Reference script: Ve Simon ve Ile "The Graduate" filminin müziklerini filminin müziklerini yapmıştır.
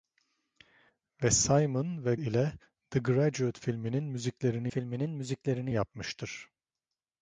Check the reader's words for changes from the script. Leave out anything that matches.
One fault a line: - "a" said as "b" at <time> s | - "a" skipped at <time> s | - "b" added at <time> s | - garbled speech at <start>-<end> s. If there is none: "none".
none